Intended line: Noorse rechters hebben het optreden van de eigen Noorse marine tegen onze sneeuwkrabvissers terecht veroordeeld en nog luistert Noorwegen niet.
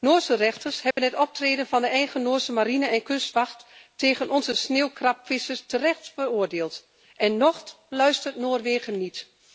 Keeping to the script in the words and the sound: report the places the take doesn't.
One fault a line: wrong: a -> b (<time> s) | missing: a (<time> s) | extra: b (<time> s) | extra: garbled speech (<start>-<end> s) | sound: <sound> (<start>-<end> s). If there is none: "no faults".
sound: dropout (0.9-1.0 s)
extra: en kustwacht (2.9 s)